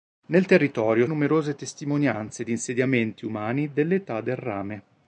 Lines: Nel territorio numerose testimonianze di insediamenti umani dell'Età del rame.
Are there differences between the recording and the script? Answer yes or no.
no